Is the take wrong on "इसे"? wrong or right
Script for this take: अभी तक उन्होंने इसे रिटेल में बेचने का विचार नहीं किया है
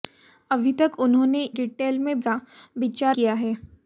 wrong